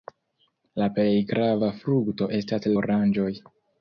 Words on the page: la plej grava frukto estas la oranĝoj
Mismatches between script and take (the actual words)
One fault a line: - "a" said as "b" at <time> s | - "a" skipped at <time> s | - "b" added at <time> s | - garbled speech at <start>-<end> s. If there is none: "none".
- "la" skipped at 2.7 s